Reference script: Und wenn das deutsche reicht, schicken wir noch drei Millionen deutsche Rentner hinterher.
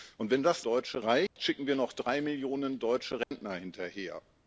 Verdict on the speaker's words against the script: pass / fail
pass